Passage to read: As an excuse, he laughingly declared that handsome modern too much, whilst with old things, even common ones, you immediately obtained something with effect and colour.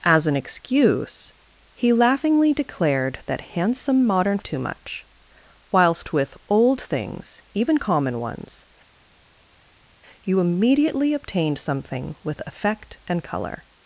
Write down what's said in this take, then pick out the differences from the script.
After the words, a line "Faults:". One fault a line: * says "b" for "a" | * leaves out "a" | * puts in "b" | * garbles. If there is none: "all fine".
As an excuse, he laughingly declared that handsome modern too much, whilst with old things, even common ones, you immediately obtained something with effect and colour.
Faults:
all fine